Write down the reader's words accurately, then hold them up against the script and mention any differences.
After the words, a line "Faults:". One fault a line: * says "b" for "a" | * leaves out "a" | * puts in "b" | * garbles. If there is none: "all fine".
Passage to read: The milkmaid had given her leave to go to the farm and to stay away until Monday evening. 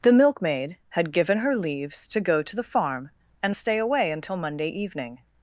The milkmaid had given her leaves to go to the farm and stay away until Monday evening.
Faults:
* says "leaves" for "leave"
* leaves out "to"